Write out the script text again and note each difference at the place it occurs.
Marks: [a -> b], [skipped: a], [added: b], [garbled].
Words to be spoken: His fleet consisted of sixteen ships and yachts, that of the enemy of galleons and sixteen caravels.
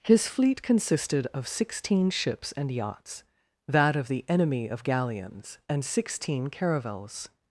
His fleet consisted of sixteen ships and yachts, that of the enemy of galleons and sixteen caravels.